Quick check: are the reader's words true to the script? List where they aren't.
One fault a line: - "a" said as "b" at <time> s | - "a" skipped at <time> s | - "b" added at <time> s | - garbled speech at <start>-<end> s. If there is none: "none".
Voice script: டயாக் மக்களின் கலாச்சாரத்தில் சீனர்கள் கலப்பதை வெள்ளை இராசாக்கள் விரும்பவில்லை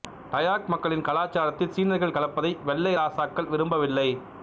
none